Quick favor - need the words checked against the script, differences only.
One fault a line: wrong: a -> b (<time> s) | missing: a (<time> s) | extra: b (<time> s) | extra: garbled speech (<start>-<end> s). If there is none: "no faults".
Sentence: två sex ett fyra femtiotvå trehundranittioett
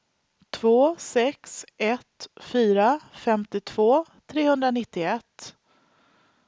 no faults